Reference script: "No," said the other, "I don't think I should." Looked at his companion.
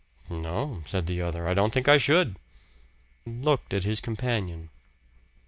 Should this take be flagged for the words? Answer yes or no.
no